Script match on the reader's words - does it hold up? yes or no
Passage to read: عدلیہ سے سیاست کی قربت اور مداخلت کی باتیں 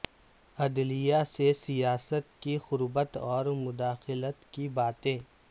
yes